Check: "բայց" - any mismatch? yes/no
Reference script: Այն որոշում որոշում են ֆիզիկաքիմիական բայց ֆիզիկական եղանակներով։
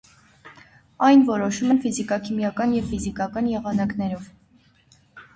yes